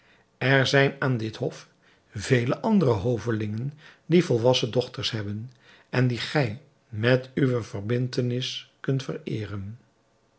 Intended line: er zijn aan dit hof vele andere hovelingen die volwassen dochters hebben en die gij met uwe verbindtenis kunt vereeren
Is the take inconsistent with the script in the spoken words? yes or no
no